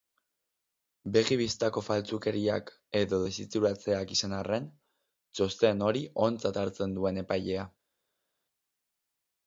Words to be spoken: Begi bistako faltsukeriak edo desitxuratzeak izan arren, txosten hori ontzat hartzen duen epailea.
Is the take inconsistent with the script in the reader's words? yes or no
no